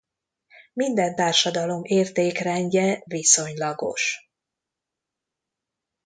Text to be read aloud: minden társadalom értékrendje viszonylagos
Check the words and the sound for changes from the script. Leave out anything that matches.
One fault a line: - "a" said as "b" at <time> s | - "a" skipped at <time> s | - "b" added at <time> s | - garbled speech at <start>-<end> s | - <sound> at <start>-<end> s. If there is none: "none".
none